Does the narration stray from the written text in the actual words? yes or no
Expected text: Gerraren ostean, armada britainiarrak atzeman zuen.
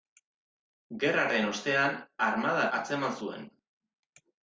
yes